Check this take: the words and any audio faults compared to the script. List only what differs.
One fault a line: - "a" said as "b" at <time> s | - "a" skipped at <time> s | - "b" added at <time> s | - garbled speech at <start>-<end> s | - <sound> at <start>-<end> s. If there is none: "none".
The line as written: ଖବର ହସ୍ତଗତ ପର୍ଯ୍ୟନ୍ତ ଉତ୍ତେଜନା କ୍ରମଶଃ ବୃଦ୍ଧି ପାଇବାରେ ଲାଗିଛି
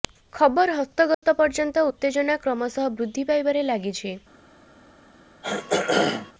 - dropout at 1.1-1.2 s
- throat clearing at 5.4-6.3 s